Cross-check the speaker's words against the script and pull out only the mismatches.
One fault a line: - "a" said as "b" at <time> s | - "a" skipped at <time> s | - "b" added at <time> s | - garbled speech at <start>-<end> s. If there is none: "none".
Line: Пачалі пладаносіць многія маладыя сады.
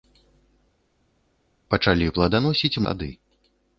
- "многія маладыя" skipped at 2.8 s